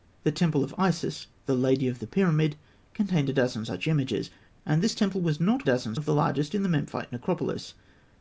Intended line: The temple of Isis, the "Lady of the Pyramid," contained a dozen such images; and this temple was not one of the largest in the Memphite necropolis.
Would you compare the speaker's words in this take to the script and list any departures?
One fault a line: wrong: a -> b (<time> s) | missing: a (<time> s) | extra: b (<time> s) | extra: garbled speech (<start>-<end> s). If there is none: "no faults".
wrong: one -> dozen (5.6 s)